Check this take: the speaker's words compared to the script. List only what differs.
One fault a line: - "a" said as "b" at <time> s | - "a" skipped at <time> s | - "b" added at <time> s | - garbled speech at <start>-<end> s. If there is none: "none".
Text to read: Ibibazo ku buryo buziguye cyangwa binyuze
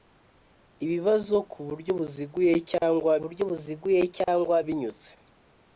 - "buryo buziguye cyangwa" added at 3.2 s